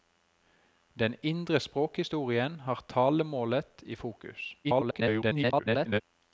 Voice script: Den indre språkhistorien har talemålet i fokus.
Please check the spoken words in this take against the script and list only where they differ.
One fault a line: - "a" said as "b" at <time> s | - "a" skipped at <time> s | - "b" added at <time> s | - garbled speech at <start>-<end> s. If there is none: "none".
- garbled speech at 4.6-6.0 s